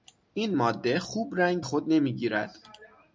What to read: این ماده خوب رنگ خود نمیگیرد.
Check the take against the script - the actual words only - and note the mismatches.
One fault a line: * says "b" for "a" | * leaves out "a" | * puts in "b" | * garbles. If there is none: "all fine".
all fine